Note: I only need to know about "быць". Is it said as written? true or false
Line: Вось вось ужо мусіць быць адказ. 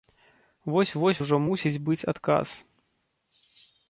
true